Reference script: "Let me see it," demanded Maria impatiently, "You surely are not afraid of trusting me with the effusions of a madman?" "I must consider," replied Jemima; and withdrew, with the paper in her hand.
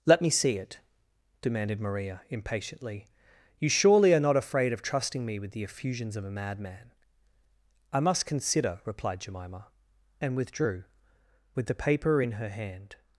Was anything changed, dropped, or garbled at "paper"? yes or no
no